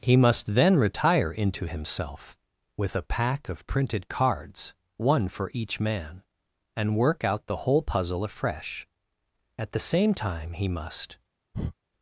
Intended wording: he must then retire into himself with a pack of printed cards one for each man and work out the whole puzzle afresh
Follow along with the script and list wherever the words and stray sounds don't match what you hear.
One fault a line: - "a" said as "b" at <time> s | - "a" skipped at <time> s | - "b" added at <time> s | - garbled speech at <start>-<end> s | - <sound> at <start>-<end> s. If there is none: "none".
- "at the same time he must" added at 9.6 s
- breath at 11.5-11.7 s